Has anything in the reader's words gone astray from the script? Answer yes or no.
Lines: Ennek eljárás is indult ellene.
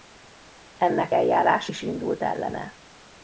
no